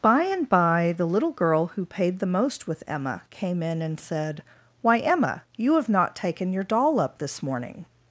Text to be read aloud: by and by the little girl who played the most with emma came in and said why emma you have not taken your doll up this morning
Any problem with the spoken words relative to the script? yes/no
yes